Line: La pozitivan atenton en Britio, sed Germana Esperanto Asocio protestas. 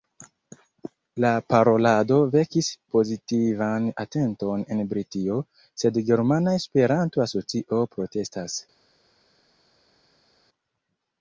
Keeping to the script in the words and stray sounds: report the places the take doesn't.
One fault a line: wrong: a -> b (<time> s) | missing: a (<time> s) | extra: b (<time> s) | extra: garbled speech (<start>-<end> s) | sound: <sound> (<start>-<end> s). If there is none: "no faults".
extra: parolado vekis (1.5 s)